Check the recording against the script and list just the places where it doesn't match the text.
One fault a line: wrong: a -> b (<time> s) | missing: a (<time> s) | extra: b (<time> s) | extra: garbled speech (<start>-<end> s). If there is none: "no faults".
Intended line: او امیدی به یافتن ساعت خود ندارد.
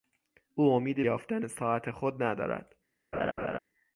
missing: به (1.1 s)